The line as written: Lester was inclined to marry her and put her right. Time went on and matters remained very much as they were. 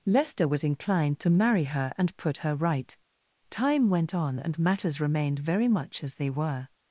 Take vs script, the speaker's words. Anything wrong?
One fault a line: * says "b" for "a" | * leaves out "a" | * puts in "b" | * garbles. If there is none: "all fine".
all fine